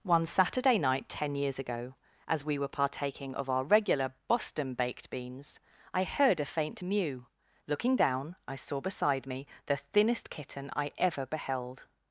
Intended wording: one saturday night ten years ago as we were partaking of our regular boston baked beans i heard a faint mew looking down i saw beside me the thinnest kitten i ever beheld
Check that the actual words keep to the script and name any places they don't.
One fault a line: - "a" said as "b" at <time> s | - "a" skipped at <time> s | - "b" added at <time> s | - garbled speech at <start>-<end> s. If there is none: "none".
none